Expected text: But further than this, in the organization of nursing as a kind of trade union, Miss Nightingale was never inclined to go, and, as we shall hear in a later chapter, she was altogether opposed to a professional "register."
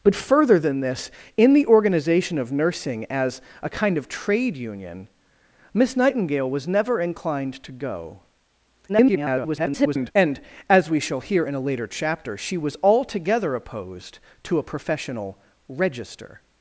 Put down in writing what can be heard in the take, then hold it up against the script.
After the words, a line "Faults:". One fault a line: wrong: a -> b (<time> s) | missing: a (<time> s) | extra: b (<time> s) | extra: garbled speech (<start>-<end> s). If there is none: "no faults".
But further than this, in the organization of nursing as a kind of trade union, Miss Nightingale was never inclined to go, [garbled] and, as we shall hear in a later chapter, she was altogether opposed to a professional "register."
Faults:
extra: garbled speech (8.9-10.1 s)